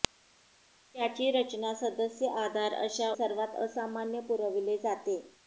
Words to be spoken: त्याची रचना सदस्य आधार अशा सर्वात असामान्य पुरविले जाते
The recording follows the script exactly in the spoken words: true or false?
true